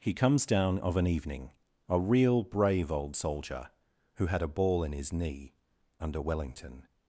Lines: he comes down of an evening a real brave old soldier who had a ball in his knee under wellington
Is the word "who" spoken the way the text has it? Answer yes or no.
yes